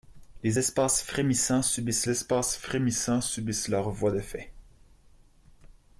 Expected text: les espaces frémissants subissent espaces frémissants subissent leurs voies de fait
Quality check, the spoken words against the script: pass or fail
pass